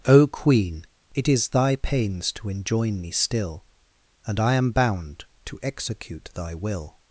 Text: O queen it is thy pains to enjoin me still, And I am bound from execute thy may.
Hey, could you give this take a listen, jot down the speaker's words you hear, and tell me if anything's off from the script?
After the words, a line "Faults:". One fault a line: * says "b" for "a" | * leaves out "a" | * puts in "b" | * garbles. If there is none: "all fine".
O queen it is thy pains to enjoin me still, And I am bound to execute thy will.
Faults:
* says "to" for "from"
* says "will" for "may"